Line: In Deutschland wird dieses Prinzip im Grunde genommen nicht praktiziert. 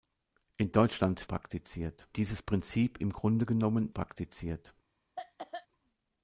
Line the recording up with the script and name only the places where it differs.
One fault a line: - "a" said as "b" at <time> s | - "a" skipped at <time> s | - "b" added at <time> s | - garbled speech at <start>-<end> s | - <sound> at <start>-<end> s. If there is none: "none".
- "wird" said as "praktiziert" at 1.3 s
- "nicht" skipped at 3.9 s
- cough at 5.2-5.7 s